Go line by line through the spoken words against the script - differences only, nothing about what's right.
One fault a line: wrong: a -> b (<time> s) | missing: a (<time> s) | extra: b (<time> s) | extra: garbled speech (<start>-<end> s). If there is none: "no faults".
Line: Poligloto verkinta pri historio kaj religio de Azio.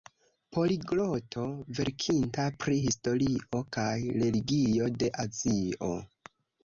no faults